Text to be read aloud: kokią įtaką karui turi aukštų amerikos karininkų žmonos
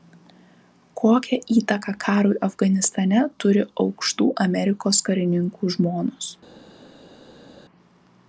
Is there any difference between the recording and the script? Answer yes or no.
yes